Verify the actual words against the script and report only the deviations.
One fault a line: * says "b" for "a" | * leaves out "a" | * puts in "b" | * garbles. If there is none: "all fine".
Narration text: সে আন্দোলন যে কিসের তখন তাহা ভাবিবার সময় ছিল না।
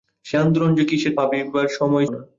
* leaves out "তখন তাহা"
* leaves out "ছিল"